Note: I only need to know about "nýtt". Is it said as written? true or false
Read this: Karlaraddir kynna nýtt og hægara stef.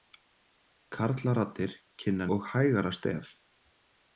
false